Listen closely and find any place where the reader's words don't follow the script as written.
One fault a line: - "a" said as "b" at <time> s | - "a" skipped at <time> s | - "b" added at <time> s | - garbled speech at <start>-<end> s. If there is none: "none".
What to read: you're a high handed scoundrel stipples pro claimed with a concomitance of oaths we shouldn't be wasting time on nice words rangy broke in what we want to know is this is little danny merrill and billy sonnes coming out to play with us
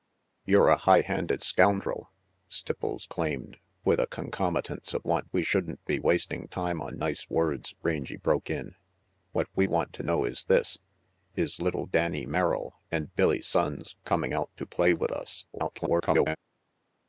- "pro" skipped at 3.0 s
- "oaths" said as "want" at 5.0 s
- garbled speech at 15.5-16.4 s